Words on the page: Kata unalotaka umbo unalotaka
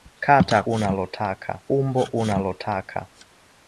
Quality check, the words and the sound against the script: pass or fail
pass